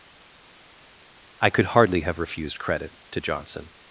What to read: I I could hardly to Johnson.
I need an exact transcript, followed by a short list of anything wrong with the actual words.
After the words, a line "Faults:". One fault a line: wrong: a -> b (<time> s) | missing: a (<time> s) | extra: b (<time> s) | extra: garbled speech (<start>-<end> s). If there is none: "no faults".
I could hardly have refused credit to Johnson.
Faults:
missing: I (1.5 s)
extra: have refused credit (2.0 s)